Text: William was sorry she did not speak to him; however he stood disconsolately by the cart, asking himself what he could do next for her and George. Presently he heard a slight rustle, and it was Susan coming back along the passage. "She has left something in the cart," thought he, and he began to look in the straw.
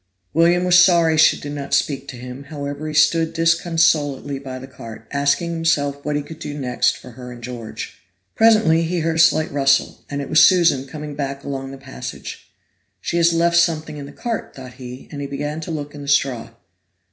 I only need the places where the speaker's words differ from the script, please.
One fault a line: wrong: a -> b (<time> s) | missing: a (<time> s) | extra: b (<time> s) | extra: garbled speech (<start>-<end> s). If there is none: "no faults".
no faults